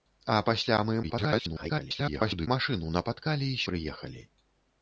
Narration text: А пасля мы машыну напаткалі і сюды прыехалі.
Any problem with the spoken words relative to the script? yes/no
yes